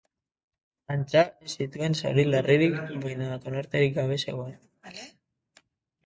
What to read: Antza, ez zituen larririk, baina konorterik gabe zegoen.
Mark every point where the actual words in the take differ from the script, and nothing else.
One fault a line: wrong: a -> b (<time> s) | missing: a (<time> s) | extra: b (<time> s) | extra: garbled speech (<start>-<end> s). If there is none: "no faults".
extra: zauri (2.0 s)